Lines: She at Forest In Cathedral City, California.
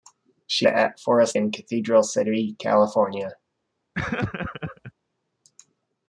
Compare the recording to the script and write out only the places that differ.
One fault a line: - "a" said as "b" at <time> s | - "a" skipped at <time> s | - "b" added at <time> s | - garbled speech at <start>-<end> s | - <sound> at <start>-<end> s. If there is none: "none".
- laugh at 3.9-4.9 s